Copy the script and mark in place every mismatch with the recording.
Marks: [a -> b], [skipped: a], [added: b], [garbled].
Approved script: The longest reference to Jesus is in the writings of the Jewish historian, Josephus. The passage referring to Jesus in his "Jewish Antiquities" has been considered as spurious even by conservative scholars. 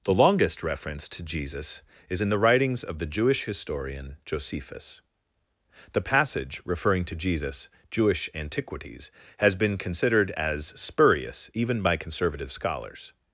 The longest reference to Jesus is in the writings of the Jewish historian, Josephus. The passage referring to Jesus [skipped: in his] "Jewish Antiquities" has been considered as spurious even by conservative scholars.